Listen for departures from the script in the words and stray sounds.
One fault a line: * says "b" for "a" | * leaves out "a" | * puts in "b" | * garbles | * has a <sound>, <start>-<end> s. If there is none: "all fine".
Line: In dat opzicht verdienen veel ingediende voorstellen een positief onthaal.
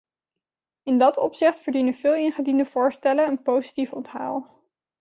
all fine